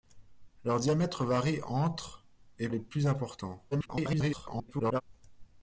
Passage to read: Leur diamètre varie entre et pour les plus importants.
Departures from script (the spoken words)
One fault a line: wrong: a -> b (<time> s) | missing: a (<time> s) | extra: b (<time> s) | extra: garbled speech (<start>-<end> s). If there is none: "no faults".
missing: pour (2.7 s)
extra: garbled speech (3.7-5.0 s)